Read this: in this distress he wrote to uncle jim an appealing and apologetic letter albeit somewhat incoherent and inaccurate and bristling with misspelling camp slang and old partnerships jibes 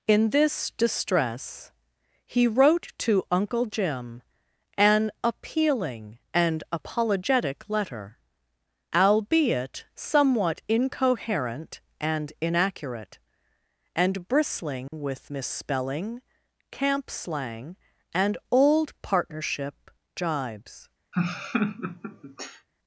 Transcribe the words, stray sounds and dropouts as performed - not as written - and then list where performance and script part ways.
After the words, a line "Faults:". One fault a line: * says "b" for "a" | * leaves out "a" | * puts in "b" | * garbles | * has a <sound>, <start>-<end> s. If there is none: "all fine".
in this distress he wrote to uncle jim an appealing and apologetic letter albeit somewhat incoherent and inaccurate and bristling with misspelling camp slang and old partnership jibes
Faults:
* has a dropout, 14.9-14.9 s
* says "partnership" for "partnerships"
* has a laugh, 21.1-22.7 s